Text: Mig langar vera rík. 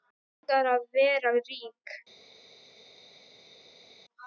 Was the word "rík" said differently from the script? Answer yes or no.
no